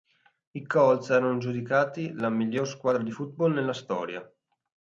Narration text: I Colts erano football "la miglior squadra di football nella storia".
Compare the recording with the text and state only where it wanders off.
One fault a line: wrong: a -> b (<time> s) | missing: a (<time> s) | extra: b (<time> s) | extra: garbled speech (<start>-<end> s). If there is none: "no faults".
wrong: football -> giudicati (1.4 s)